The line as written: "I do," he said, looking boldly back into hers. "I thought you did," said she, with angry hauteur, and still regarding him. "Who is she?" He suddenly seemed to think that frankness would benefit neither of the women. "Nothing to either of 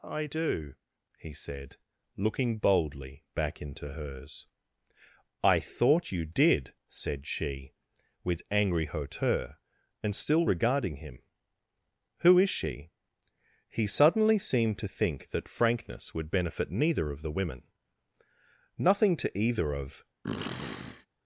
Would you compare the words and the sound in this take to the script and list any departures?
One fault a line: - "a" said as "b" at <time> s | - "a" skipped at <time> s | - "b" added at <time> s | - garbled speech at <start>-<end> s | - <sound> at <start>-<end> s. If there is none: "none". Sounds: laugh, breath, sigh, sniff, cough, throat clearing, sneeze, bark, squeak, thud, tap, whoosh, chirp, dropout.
- sniff at 20.2-21.1 s